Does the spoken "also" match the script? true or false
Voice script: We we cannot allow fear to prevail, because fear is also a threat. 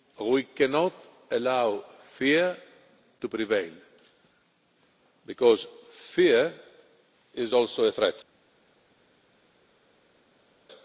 true